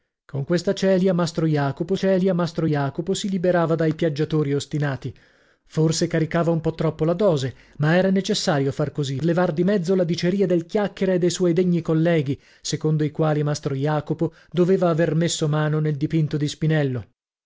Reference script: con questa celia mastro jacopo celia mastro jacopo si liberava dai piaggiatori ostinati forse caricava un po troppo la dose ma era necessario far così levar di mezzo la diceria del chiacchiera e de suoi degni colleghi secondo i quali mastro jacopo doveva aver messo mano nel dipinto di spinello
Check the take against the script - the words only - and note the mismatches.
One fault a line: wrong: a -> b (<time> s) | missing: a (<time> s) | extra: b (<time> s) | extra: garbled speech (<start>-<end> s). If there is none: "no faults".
no faults